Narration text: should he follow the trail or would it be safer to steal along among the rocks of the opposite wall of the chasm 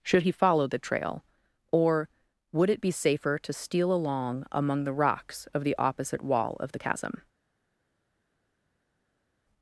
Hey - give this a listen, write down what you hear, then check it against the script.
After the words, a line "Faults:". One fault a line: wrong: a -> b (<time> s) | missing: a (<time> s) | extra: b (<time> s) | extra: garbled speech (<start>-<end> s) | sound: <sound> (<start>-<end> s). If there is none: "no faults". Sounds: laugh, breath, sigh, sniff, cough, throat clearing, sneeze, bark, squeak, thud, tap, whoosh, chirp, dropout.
should he follow the trail or would it be safer to steal along among the rocks of the opposite wall of the chasm
Faults:
no faults